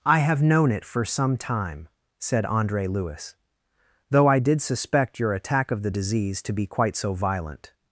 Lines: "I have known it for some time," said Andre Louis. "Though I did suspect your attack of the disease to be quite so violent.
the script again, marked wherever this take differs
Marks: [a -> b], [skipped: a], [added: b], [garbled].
"I have known it for some time," said Andre Louis. "Though I did suspect your attack of the disease to be quite so violent.